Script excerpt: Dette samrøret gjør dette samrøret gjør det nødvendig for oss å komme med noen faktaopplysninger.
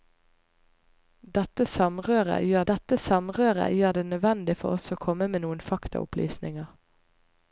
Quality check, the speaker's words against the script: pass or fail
pass